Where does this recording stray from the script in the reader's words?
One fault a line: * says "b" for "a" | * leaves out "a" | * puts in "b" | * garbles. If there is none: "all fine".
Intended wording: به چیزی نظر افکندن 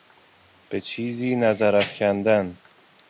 all fine